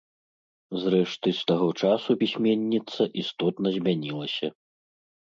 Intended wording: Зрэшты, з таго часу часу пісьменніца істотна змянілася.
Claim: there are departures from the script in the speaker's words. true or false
true